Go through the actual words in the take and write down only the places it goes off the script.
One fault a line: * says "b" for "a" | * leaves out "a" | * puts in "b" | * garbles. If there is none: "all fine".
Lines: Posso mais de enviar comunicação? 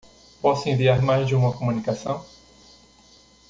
* puts in "enviar"
* says "uma" for "enviar"